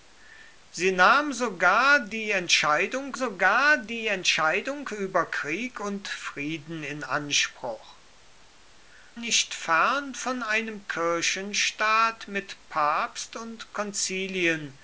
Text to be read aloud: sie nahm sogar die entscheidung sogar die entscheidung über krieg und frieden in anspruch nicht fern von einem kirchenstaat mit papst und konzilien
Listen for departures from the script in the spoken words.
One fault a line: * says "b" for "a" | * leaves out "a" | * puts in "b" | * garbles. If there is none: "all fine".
all fine